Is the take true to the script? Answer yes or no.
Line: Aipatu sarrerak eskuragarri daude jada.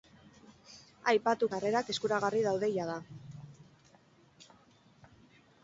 yes